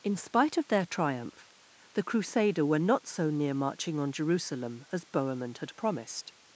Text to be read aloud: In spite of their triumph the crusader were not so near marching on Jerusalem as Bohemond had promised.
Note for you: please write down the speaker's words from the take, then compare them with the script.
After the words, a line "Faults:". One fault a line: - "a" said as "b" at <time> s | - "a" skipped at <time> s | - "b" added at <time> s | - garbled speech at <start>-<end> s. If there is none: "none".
In spite of their triumph the crusader were not so near marching on Jerusalem as Bohemond had promised.
Faults:
none